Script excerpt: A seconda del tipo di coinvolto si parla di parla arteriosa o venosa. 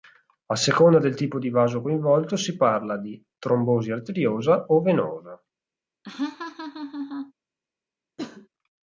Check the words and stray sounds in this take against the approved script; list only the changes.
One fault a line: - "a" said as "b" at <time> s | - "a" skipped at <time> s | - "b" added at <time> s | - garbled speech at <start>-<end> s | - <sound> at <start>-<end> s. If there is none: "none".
- "vaso" added at 1.5 s
- "parla" said as "trombosi" at 3.4 s
- laugh at 6.0-7.3 s
- cough at 8.2-8.5 s